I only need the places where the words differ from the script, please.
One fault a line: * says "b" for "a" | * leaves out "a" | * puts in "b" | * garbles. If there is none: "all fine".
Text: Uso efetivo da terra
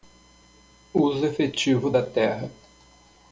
all fine